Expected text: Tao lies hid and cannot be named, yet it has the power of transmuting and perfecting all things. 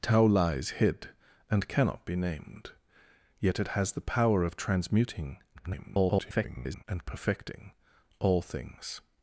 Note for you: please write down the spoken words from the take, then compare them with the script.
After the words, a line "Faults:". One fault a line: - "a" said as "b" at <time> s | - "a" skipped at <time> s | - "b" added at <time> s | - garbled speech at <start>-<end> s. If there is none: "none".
Tao lies hid and cannot be named, yet it has the power of transmuting [garbled] and perfecting all things.
Faults:
- garbled speech at 5.5-6.8 s